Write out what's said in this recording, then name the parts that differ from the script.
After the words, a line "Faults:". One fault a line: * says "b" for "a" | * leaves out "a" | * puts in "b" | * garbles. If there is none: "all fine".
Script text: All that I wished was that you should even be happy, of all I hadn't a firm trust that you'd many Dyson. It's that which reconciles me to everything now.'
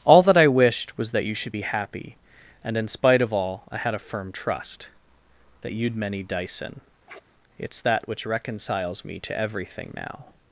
All that I wished was that you should be happy, and in spite of all I had a firm trust that you'd many Dyson. It's that which reconciles me to everything now.'
Faults:
* leaves out "even"
* puts in "and in spite"
* says "had" for "hadn't"